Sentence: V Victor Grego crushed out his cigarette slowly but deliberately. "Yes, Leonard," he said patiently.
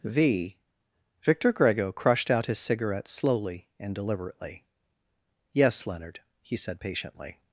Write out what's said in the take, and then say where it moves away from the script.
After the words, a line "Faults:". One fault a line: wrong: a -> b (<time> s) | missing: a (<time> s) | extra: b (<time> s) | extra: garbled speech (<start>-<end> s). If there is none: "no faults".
V Victor Grego crushed out his cigarette slowly and deliberately. "Yes, Leonard," he said patiently.
Faults:
wrong: but -> and (3.8 s)